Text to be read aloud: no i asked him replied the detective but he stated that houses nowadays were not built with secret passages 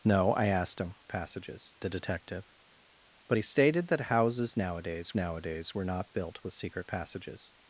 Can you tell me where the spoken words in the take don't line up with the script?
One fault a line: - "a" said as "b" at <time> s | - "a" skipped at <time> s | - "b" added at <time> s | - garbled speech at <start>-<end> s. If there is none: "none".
- "replied" said as "passages" at 1.1 s
- "nowadays" added at 5.1 s